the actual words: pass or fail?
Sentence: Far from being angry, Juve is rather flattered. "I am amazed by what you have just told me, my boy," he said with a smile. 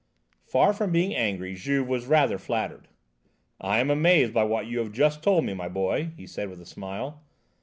fail